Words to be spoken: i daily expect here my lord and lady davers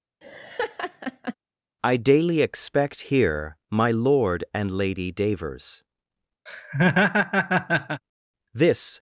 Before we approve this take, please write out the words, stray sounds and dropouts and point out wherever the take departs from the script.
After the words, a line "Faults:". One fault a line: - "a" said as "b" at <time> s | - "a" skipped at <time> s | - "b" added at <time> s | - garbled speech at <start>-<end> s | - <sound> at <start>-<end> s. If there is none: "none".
i daily expect here my lord and lady davers this
Faults:
- laugh at 0.2-1.3 s
- laugh at 6.5-8.0 s
- "this" added at 8.6 s